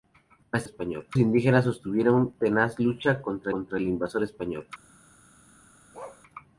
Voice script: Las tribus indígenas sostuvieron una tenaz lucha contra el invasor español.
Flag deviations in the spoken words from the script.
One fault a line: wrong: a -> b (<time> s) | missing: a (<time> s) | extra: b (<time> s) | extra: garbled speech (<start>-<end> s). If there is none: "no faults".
wrong: tribus -> español (0.6 s)
missing: una (2.3 s)
extra: contra (3.5 s)